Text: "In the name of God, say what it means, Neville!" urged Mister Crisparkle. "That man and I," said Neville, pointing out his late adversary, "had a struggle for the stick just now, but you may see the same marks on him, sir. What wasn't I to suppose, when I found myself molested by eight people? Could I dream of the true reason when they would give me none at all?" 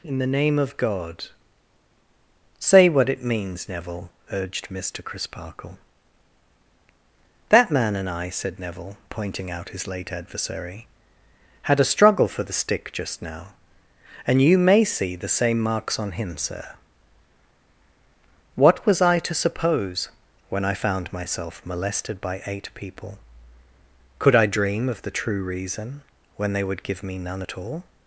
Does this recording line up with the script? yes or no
no